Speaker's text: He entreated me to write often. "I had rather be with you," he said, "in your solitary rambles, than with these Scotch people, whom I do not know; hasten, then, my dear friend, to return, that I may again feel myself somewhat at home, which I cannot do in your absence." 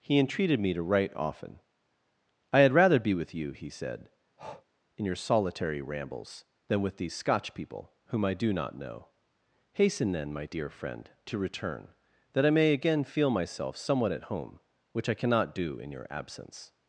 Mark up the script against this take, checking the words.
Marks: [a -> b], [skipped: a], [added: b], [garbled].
He entreated me to write often. "I had rather be with you," he said, "in your solitary rambles, than with these Scotch people, whom I do not know; hasten, then, my dear friend, to return, that I may again feel myself somewhat at home, which I cannot do in your absence."